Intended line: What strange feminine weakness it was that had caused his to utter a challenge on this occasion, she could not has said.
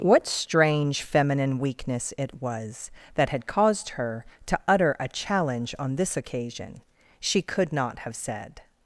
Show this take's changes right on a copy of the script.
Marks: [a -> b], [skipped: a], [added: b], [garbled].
What strange feminine weakness it was that had caused [his -> her] to utter a challenge on this occasion, she could not [has -> have] said.